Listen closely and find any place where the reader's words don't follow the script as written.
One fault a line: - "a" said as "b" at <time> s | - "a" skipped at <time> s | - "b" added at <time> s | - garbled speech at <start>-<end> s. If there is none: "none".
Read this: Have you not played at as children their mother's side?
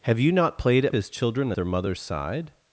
none